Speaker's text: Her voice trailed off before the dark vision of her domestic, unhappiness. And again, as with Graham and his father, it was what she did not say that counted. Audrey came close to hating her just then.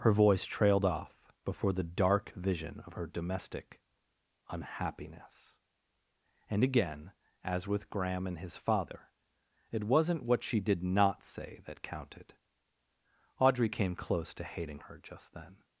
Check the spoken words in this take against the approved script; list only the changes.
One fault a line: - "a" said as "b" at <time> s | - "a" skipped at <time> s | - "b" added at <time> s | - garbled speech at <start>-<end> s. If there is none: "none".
- "was" said as "wasn't" at 9.8 s